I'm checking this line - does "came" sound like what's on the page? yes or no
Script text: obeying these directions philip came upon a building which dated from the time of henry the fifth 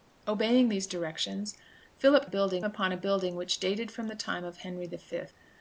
no